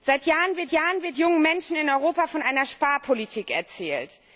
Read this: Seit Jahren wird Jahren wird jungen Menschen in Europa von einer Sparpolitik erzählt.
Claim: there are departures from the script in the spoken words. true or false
false